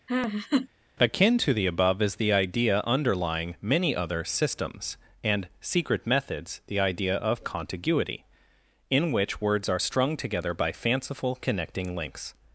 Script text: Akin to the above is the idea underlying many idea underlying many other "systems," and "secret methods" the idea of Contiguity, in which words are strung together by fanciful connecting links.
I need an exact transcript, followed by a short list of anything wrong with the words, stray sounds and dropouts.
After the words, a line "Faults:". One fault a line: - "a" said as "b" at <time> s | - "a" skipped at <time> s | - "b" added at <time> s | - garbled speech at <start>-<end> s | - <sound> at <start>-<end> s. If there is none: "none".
Akin to the above is the idea underlying many other "systems," and "secret methods" the idea of Contiguity, in which words are strung together by fanciful connecting links.
Faults:
- laugh at 0.1-0.7 s
- "idea underlying many" skipped at 3.9 s